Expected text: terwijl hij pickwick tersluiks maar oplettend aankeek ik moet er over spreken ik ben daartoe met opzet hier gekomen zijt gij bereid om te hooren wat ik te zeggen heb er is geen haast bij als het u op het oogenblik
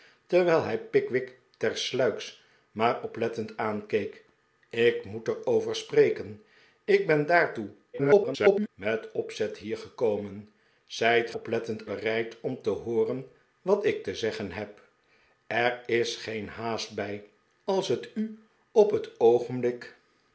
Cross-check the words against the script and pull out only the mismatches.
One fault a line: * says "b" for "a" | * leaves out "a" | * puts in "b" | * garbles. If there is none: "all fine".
* garbles
* says "oplettend" for "gij"